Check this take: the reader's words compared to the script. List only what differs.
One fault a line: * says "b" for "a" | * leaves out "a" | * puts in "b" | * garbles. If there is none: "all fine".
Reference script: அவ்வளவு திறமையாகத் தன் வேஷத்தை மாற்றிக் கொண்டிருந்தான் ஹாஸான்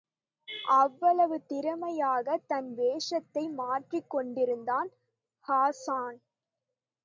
all fine